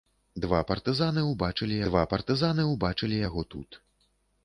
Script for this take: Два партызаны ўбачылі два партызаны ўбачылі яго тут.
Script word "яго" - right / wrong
right